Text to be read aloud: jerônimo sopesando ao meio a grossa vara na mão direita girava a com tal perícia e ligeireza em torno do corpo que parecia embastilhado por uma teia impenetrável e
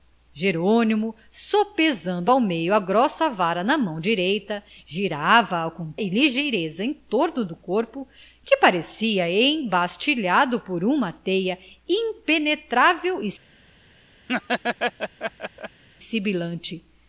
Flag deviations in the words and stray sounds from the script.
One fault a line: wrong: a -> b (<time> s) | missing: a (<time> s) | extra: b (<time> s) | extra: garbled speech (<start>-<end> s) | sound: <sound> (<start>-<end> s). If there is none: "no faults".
missing: tal perícia (5.9 s)
sound: laugh (14.3-15.8 s)